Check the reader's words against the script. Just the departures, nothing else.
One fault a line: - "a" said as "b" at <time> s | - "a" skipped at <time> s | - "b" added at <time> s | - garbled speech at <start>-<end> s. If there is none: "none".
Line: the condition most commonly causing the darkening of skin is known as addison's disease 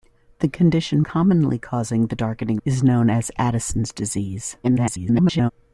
- "most" skipped at 1.0 s
- "of skin" skipped at 2.6 s
- garbled speech at 4.6-5.5 s